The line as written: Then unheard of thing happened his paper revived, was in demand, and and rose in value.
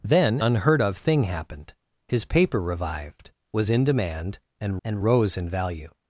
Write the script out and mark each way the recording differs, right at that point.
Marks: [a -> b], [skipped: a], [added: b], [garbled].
Then unheard of thing happened his paper revived, was in demand, and and rose in value.